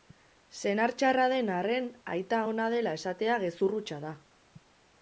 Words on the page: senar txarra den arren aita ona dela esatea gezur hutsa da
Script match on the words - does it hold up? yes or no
yes